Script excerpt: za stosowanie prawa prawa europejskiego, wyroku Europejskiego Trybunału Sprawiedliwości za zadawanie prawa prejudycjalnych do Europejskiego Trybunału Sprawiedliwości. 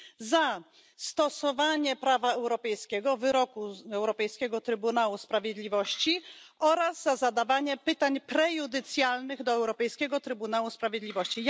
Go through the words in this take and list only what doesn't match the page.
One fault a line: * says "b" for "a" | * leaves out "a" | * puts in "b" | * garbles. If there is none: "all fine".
* leaves out "prawa"
* puts in "oraz"
* says "pytań" for "prawa"